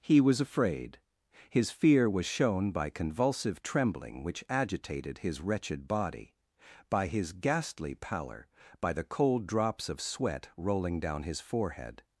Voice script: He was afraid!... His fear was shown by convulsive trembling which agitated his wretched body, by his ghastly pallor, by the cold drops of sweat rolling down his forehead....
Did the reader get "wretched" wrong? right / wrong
right